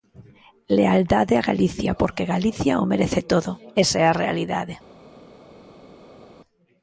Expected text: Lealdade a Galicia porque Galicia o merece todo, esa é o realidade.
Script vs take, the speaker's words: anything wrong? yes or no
yes